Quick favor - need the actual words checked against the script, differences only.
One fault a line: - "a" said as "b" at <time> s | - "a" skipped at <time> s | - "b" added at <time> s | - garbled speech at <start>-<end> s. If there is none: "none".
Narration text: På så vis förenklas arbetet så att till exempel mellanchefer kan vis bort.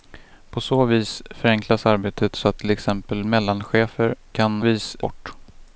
none